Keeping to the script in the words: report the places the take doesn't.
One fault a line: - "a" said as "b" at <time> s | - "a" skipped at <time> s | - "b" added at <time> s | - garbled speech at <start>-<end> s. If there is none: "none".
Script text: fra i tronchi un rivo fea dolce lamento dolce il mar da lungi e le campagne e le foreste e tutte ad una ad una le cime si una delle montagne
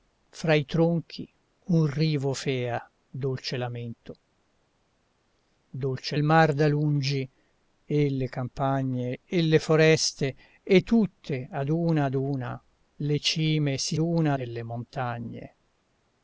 none